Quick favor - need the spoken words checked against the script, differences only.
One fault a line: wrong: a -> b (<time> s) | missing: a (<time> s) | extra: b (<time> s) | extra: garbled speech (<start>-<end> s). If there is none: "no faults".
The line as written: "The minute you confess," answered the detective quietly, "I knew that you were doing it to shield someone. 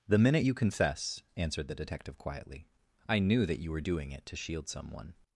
no faults